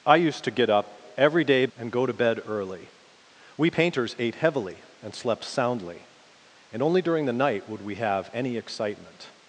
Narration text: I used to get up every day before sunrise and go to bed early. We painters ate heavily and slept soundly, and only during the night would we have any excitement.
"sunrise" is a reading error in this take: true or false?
true